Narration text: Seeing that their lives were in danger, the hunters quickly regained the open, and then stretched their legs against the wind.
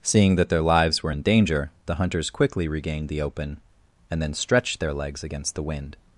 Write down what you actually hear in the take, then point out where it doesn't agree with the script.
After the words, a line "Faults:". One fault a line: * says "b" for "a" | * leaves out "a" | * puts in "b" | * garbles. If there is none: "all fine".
Seeing that their lives were in danger, the hunters quickly regained the open, and then stretched their legs against the wind.
Faults:
all fine